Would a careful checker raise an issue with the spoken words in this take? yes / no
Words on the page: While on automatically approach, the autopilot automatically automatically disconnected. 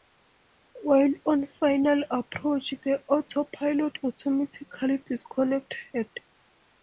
yes